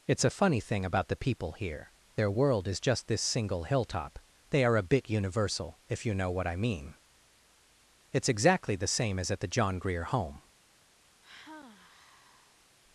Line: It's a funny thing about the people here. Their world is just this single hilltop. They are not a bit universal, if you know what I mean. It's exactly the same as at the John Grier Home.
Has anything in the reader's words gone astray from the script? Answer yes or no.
yes